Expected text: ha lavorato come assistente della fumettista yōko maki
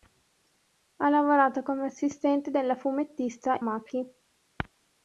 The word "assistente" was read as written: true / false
true